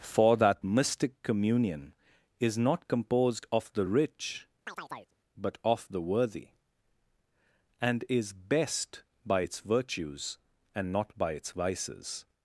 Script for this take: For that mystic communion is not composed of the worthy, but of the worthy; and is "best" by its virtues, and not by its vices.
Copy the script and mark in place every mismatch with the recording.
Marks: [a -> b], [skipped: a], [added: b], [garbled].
For that mystic communion is not composed of the [worthy, -> rich] but of the worthy; and is "best" by its virtues, and not by its vices.